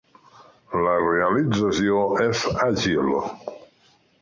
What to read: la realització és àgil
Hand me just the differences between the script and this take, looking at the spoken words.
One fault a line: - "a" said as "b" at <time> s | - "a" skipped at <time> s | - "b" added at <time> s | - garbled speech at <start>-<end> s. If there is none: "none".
none